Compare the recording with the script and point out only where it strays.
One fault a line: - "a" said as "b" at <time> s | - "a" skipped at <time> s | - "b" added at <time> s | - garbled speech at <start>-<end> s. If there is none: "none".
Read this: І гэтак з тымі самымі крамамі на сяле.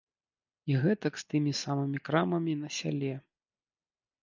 none